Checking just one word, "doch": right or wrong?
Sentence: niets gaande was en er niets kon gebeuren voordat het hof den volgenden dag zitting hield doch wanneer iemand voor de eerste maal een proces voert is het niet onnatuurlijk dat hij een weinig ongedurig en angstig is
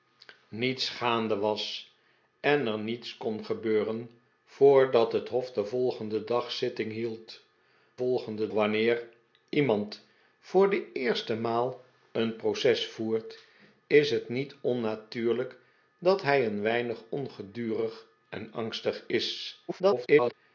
wrong